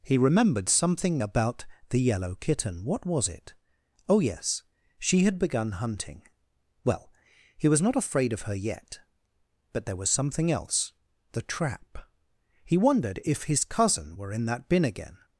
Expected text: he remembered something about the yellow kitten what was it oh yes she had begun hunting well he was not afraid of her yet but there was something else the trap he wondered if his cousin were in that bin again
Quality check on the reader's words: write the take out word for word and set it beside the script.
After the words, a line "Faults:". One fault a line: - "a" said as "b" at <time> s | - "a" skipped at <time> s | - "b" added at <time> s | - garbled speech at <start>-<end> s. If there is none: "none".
he remembered something about the yellow kitten what was it oh yes she had begun hunting well he was not afraid of her yet but there was something else the trap he wondered if his cousin were in that bin again
Faults:
none